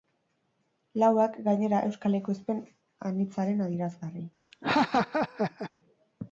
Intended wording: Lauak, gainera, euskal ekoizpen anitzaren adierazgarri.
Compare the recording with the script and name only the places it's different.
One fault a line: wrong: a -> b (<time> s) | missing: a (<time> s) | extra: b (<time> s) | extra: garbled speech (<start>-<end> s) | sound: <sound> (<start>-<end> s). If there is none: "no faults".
sound: laugh (4.5-5.7 s)